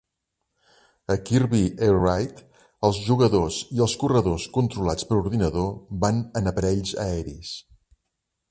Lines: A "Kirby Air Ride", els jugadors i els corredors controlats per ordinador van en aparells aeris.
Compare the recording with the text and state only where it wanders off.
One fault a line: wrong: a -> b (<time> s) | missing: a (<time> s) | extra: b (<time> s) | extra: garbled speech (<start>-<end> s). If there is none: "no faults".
no faults